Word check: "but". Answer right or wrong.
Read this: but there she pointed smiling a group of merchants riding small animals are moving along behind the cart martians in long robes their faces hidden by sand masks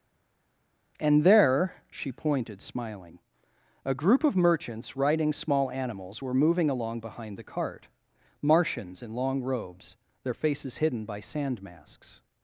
wrong